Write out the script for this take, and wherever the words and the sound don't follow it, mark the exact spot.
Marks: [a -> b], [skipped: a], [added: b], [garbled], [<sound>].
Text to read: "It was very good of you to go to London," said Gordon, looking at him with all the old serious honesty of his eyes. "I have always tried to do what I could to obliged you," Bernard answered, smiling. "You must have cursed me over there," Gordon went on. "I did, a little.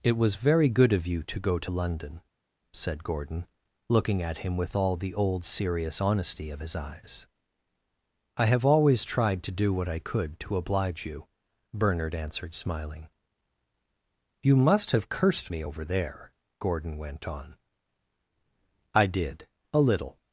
"It was very good of you to go to London," said Gordon, looking at him with all the old serious honesty of his eyes. "I have always tried to do what I could to [obliged -> oblige] you," Bernard answered, smiling. "You must have cursed me over there," Gordon went on. "I did, a little.